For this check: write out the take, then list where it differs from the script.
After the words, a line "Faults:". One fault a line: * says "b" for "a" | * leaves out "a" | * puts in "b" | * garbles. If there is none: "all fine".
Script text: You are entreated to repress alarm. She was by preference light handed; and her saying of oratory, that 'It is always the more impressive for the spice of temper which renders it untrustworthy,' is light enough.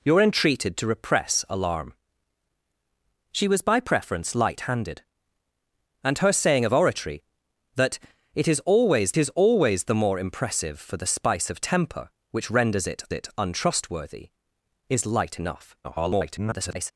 You are entreated to repress alarm. She was by preference light handed; and her saying of oratory, that 'It is always is always the more impressive for the spice of temper which renders it it untrustworthy,' is light enough. [garbled]
Faults:
* puts in "is always"
* puts in "it"
* garbles